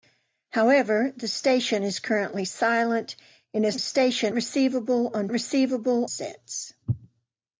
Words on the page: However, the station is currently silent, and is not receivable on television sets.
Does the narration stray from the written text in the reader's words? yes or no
yes